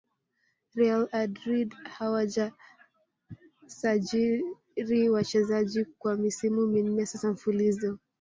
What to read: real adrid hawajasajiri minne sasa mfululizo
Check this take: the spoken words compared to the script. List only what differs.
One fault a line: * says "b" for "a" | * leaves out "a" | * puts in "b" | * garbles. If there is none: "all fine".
* puts in "wachezaji kwa misimu"